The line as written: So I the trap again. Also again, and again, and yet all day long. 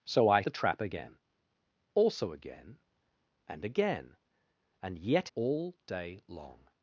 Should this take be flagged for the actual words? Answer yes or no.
no